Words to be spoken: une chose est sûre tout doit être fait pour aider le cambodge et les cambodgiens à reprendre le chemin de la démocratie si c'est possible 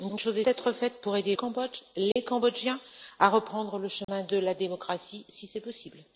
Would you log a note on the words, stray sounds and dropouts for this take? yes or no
yes